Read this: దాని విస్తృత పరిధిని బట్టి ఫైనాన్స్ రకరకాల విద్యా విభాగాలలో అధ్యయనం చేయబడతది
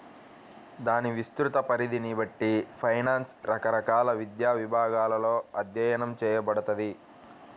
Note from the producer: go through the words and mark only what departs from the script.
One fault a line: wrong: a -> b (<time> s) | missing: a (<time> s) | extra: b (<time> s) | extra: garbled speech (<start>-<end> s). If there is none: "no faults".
no faults